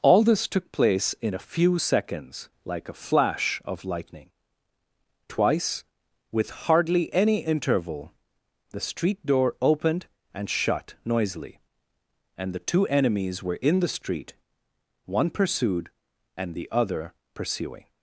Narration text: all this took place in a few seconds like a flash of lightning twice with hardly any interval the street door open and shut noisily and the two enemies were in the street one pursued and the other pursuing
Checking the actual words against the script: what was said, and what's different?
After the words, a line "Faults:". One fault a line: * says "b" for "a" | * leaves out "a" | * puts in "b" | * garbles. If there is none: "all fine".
all this took place in a few seconds like a flash of lightning twice with hardly any interval the street door opened and shut noisily and the two enemies were in the street one pursued and the other pursuing
Faults:
* says "opened" for "open"